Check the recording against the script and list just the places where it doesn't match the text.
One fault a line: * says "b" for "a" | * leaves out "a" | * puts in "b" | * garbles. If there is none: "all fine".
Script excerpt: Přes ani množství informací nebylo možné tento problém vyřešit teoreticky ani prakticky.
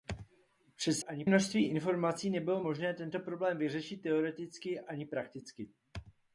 all fine